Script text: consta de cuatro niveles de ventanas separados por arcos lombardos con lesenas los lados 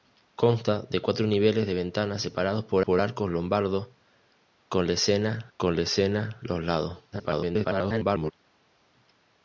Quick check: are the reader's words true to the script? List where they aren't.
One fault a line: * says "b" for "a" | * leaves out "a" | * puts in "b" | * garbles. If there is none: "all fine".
* puts in "por"
* puts in "con lesenas"
* garbles